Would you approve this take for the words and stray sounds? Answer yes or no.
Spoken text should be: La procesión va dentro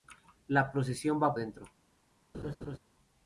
no